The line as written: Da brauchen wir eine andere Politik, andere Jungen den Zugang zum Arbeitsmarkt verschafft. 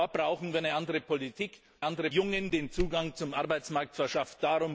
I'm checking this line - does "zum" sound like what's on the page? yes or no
yes